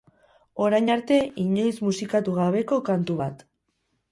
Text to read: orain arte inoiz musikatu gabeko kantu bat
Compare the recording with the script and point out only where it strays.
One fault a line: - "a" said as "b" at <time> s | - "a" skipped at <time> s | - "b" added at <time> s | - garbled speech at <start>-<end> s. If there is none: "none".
none